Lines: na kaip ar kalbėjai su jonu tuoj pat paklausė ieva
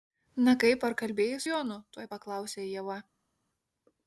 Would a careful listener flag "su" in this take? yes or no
yes